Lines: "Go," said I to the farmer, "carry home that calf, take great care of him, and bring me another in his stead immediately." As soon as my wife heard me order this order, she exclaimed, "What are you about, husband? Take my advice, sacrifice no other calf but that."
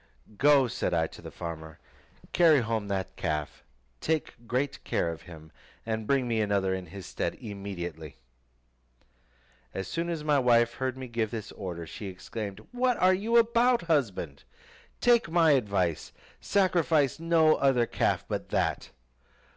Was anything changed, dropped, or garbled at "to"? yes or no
no